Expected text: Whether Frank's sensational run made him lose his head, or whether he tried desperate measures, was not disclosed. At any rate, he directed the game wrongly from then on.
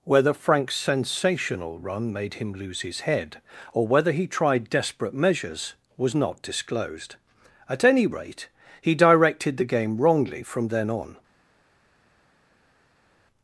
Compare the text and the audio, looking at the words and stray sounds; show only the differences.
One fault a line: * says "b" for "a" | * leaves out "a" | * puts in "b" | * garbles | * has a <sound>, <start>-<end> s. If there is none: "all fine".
all fine